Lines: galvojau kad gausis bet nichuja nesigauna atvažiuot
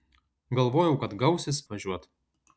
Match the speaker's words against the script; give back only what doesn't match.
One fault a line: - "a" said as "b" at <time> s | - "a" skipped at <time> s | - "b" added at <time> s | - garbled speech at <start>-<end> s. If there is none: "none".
- "bet nichuja nesigauna" skipped at 1.6 s